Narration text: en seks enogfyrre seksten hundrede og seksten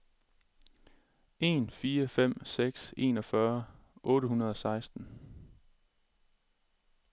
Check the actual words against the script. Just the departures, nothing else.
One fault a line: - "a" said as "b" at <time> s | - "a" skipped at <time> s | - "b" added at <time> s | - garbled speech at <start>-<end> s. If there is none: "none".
- "fire fem" added at 1.7 s
- "seksten" said as "otte" at 4.0 s